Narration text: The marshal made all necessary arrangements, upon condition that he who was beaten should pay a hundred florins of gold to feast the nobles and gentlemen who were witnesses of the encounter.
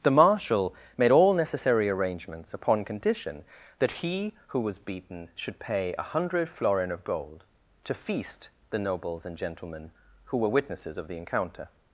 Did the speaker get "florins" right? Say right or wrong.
wrong